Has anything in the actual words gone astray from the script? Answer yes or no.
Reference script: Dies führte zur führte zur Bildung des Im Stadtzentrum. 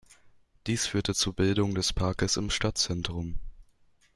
yes